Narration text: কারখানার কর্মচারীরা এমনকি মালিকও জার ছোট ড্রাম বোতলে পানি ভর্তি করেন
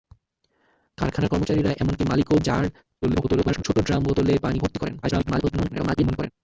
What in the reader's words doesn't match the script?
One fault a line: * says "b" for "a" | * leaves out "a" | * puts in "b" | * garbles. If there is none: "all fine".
* garbles
* garbles